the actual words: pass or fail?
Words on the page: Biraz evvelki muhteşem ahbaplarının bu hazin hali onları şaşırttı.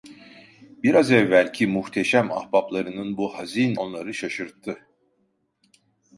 fail